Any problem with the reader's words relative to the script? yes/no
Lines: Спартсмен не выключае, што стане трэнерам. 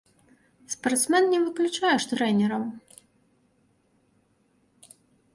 yes